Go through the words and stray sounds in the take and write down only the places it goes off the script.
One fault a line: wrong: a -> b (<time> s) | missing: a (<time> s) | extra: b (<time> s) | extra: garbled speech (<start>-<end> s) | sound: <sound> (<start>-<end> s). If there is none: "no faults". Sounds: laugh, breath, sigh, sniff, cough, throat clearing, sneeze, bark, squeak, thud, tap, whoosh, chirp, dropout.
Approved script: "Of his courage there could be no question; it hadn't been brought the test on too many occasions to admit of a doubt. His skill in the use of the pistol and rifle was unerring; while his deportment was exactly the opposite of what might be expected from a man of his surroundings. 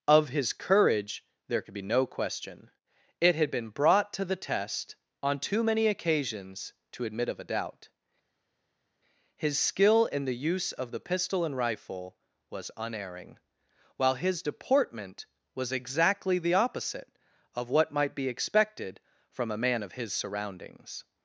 wrong: hadn't -> had (3.4 s)
extra: to (4.1 s)